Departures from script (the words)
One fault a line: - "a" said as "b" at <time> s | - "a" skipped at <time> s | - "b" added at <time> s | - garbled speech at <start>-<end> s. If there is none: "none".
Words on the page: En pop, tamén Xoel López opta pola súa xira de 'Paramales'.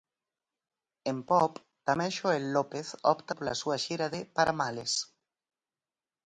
none